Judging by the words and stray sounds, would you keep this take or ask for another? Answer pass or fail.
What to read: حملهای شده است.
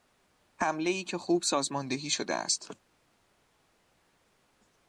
fail